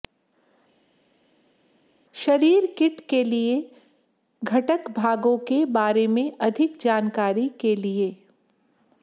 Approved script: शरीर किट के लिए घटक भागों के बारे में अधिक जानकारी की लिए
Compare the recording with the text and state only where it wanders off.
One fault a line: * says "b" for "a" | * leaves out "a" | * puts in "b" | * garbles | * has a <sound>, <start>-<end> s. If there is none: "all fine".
* says "के" for "की"